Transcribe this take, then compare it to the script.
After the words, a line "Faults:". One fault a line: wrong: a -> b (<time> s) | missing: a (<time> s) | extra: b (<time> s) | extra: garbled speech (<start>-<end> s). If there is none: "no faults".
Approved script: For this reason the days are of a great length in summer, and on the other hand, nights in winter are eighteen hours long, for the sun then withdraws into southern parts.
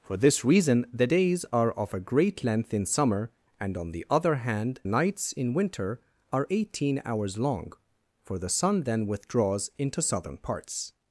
For this reason the days are of a great length in summer, and on the other hand, nights in winter are eighteen hours long, for the sun then withdraws into southern parts.
Faults:
no faults